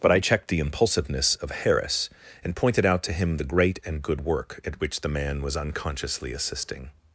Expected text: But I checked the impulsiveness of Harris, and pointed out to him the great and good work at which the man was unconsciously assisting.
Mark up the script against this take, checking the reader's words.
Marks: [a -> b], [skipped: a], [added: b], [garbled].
But I checked the impulsiveness of Harris, and pointed out to him the great and good work at which the man was unconsciously assisting.